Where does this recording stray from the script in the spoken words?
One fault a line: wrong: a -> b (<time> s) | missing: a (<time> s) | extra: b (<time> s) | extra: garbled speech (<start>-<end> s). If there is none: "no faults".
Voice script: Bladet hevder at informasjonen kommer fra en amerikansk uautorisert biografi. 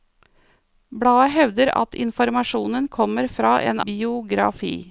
missing: amerikansk uautorisert (3.8 s)